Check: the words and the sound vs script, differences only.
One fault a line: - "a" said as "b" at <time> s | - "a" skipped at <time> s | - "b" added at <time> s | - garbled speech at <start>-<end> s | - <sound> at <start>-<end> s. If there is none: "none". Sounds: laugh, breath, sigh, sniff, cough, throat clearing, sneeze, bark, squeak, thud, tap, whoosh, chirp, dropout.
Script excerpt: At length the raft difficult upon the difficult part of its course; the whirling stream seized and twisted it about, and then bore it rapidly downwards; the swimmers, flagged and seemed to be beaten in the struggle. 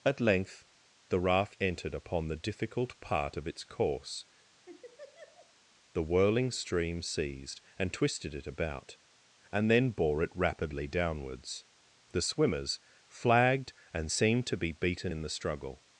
- "difficult" said as "entered" at 1.6 s
- laugh at 4.6-5.5 s